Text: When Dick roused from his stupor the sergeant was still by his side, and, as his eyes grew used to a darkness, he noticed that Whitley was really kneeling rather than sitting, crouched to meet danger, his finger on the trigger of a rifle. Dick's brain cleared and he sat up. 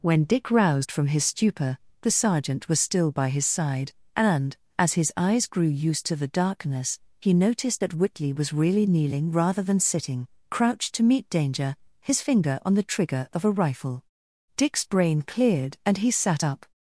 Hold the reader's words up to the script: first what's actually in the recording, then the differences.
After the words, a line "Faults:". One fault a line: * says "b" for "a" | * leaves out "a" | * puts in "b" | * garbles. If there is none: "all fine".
When Dick roused from his stupor the sergeant was still by his side, and, as his eyes grew used to the darkness, he noticed that Whitley was really kneeling rather than sitting, crouched to meet danger, his finger on the trigger of a rifle. Dick's brain cleared and he sat up.
Faults:
* says "the" for "a"